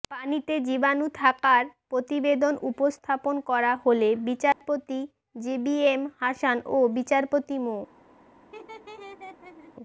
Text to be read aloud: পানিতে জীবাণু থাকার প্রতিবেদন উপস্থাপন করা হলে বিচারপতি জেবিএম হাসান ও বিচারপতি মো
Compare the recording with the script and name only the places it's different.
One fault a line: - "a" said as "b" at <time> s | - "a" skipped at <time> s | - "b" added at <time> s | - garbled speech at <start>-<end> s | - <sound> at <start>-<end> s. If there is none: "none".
- dropout at 4.5-4.6 s
- laugh at 8.5-9.7 s